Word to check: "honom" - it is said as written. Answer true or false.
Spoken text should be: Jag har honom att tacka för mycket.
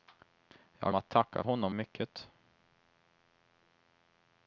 false